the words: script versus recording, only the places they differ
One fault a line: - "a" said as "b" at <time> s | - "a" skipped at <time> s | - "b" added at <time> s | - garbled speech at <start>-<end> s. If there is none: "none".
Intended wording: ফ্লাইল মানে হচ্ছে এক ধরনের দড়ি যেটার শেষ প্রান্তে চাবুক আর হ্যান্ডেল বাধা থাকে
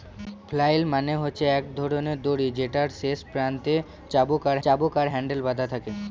- "চাবুক আর" added at 4.6 s